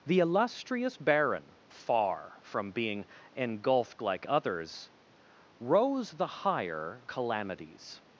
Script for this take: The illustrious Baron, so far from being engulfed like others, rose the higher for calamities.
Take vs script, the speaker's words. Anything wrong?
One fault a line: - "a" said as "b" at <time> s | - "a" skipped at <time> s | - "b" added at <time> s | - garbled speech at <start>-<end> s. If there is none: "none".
- "so" skipped at 1.6 s
- "for" skipped at 7.0 s